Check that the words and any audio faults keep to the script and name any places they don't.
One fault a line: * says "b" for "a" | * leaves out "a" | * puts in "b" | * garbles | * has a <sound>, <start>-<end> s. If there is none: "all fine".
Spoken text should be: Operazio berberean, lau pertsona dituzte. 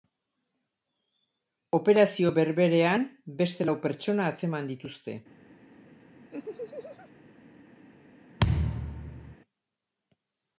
* puts in "beste"
* puts in "atzeman"
* has a laugh, 6.3-7.1 s
* has a thud, 8.4-9.4 s